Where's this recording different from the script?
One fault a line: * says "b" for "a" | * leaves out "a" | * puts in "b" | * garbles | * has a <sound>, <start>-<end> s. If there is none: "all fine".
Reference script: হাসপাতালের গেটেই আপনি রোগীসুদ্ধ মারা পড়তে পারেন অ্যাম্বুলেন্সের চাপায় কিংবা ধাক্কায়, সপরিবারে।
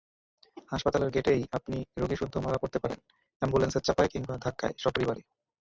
all fine